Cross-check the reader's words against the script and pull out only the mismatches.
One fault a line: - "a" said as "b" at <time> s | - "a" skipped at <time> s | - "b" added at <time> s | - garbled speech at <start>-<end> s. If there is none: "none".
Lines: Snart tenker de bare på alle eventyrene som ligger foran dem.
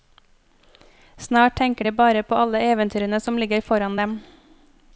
none